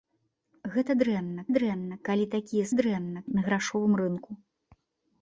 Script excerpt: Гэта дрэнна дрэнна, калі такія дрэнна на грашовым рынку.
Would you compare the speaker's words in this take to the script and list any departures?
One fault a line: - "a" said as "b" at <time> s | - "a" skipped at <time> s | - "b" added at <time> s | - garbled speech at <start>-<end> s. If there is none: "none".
none